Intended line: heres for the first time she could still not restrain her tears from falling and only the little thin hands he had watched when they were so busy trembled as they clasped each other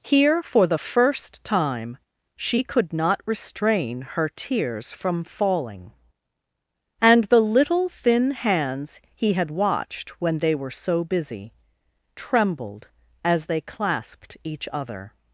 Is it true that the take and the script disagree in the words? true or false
true